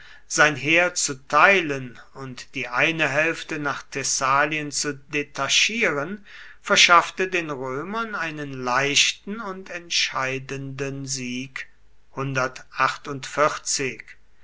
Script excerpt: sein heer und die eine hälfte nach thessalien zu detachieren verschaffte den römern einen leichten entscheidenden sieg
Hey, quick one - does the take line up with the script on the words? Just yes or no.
no